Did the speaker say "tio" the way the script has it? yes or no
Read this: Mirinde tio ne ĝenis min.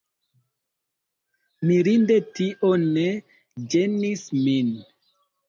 yes